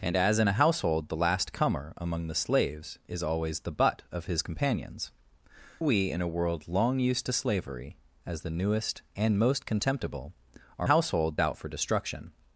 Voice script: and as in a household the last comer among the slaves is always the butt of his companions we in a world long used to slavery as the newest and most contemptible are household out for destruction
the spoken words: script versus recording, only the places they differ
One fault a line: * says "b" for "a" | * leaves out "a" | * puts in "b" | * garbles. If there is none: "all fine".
all fine